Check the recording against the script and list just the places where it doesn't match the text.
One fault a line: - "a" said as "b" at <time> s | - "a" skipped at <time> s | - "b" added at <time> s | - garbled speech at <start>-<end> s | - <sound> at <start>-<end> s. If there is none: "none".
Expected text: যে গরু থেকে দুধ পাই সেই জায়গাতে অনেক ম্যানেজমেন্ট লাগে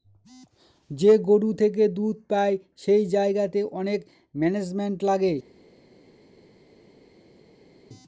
none